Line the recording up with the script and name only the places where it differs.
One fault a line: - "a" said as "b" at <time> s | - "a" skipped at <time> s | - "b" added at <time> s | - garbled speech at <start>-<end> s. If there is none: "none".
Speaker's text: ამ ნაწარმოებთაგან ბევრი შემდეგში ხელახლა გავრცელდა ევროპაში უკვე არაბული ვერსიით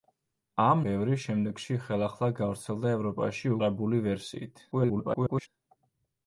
- "ნაწარმოებთაგან" skipped at 0.8 s
- "უკვე" skipped at 3.5 s
- garbled speech at 4.7-5.5 s